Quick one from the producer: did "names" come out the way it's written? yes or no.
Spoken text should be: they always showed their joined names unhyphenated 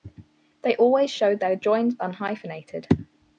no